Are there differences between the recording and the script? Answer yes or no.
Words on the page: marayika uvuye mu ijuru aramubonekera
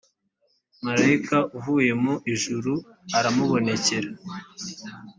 no